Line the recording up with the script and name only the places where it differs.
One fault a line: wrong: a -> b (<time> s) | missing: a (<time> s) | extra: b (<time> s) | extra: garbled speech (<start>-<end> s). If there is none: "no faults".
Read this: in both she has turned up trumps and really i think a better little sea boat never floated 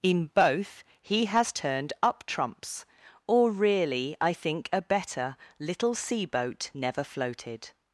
wrong: she -> he (1.0 s)
wrong: and -> or (3.3 s)